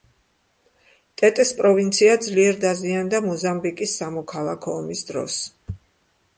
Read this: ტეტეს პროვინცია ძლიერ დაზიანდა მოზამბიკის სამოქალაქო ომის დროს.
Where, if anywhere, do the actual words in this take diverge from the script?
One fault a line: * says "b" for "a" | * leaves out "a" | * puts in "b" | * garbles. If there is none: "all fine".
all fine